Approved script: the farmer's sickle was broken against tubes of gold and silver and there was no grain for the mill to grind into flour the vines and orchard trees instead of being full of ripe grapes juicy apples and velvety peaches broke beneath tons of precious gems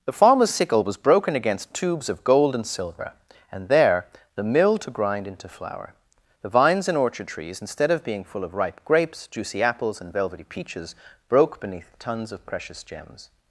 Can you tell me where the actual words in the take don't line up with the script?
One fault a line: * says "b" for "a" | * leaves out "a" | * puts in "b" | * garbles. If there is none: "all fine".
* leaves out "was no grain for"